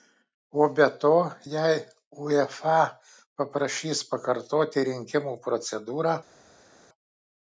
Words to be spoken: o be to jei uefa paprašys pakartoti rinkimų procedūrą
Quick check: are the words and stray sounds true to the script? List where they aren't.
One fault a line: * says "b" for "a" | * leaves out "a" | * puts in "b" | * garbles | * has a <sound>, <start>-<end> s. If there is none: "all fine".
all fine